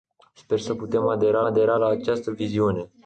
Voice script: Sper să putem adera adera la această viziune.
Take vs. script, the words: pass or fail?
pass